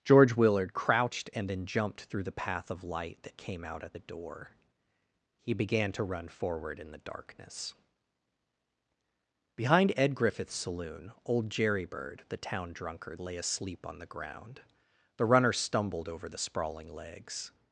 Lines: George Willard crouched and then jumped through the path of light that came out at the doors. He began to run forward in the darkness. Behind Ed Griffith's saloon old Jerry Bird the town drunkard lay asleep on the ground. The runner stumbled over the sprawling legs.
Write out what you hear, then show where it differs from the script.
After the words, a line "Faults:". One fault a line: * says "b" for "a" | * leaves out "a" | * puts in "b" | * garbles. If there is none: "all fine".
George Willard crouched and then jumped through the path of light that came out at the door. He began to run forward in the darkness. Behind Ed Griffith's saloon old Jerry Bird the town drunkard lay asleep on the ground. The runner stumbled over the sprawling legs.
Faults:
* says "door" for "doors"